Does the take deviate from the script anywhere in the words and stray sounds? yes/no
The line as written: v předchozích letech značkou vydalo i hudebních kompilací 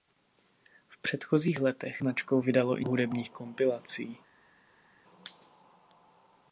no